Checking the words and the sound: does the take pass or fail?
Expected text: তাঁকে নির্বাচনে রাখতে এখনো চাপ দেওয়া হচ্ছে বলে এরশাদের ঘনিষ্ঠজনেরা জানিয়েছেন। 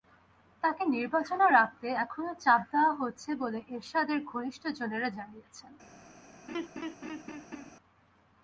fail